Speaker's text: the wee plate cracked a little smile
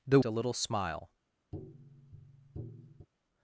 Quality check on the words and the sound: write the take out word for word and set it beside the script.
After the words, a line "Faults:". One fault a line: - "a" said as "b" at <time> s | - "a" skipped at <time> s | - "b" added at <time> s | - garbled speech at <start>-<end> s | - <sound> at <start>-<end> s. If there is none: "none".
the a little smile
Faults:
- "wee plate cracked" skipped at 0.2 s
- tap at 1.5-3.1 s